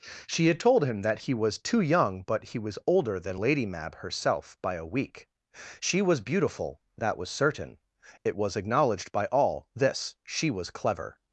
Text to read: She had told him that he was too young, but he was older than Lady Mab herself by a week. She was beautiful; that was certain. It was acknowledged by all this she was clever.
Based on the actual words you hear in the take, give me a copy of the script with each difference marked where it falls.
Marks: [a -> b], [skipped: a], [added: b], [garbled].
She had told him that he was too young, but he was older than Lady Mab herself by a week. She was beautiful; that was certain. It was acknowledged by all this she was clever.